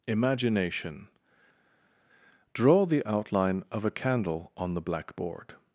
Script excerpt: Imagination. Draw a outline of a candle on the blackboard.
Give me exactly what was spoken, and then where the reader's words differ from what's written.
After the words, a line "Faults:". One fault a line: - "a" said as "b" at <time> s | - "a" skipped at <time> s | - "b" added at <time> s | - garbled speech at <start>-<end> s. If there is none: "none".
Imagination. Draw the outline of a candle on the blackboard.
Faults:
- "a" said as "the" at 2.8 s